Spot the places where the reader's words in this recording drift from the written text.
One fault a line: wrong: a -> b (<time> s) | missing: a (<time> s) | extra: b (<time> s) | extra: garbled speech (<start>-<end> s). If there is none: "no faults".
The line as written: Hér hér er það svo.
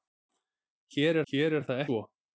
no faults